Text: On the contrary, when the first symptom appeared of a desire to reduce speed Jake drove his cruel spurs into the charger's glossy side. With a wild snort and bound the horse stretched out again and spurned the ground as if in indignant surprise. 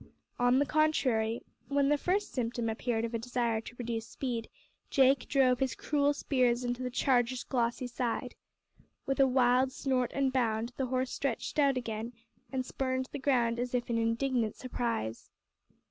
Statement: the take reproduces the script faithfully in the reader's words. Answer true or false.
true